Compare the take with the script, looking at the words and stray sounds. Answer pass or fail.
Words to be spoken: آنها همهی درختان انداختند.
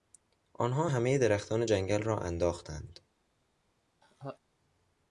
fail